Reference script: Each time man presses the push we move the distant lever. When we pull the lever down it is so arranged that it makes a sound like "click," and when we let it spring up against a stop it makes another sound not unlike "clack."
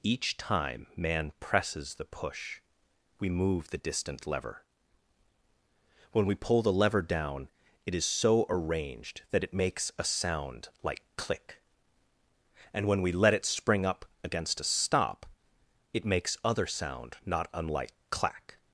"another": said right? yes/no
no